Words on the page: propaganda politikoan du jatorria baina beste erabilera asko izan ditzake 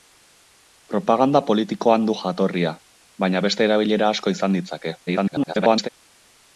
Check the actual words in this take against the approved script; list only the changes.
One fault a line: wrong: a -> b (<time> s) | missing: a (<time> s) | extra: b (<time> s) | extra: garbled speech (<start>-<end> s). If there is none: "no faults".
extra: garbled speech (5.1-5.9 s)